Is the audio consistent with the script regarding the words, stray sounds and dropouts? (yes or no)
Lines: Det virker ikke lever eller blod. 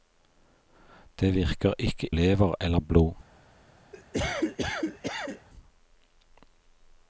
no